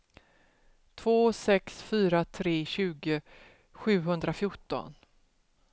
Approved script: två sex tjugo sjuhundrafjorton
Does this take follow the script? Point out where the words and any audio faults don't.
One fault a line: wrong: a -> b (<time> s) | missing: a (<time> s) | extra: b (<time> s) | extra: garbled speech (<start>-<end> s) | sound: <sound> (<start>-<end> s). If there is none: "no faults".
extra: fyra tre (1.8 s)